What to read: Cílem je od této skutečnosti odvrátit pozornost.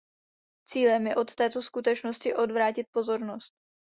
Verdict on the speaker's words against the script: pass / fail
pass